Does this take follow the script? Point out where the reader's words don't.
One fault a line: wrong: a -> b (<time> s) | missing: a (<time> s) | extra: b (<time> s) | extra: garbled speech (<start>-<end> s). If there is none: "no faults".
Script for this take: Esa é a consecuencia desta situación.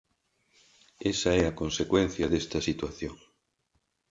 no faults